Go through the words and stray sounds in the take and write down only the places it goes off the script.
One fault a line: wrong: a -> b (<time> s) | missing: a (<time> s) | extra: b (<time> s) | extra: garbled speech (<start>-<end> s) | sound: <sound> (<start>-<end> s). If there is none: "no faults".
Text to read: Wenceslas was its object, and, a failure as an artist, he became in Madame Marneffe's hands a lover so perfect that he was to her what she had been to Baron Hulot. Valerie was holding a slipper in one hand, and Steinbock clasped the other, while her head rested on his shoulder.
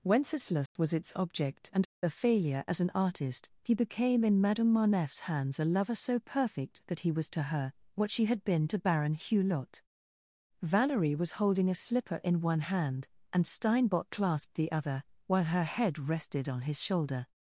sound: dropout (0.7-0.8 s)